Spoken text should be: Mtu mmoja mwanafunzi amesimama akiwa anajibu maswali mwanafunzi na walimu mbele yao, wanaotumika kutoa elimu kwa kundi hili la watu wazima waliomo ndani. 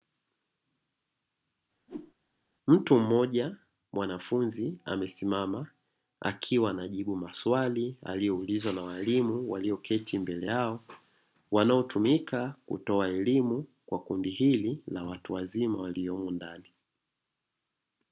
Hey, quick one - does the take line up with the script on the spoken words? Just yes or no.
no